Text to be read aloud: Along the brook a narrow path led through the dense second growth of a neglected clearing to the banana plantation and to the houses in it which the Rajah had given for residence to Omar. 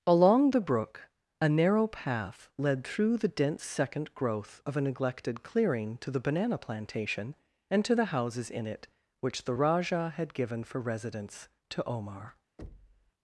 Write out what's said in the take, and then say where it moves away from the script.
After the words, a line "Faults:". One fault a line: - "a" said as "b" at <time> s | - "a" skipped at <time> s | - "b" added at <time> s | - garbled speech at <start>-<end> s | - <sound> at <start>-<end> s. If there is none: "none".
Along the brook a narrow path led through the dense second growth of a neglected clearing to the banana plantation and to the houses in it which the Rajah had given for residence to Omar.
Faults:
- thud at 12.6-13.1 s